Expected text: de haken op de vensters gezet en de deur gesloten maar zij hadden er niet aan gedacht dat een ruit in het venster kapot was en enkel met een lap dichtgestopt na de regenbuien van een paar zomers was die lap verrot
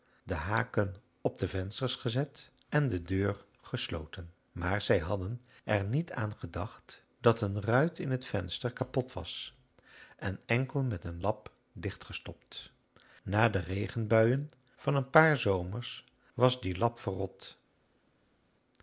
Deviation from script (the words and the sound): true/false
false